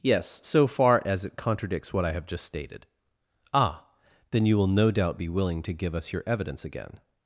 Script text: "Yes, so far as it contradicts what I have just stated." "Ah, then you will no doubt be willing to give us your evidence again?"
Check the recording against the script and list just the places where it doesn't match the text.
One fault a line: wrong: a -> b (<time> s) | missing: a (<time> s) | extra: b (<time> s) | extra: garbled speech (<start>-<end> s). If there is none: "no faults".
no faults